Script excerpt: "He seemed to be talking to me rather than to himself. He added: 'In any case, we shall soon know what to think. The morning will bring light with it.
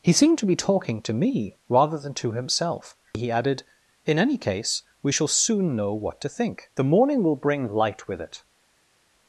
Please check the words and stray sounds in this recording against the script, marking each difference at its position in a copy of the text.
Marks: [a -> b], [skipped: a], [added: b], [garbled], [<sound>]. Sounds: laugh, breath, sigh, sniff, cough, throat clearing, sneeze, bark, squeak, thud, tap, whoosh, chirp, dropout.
"He seemed to be talking to me rather than to himself. He added: 'In any case, we shall soon know what to think. The morning will bring light with it.